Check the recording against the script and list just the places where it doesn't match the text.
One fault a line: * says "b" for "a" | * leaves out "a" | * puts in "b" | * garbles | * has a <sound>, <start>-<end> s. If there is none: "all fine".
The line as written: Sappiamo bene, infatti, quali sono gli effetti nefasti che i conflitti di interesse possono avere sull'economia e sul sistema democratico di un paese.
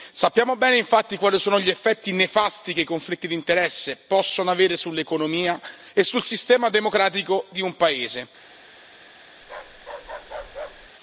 * has a bark, 9.4-10.9 s